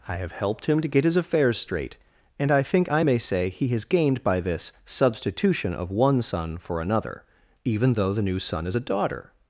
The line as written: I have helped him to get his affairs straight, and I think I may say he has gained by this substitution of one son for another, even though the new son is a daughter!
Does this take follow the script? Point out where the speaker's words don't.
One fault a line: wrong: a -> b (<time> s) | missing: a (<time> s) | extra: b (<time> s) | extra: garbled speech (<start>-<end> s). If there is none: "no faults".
no faults